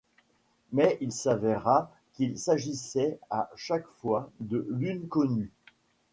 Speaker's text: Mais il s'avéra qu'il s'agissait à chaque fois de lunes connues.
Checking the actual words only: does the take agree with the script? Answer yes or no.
yes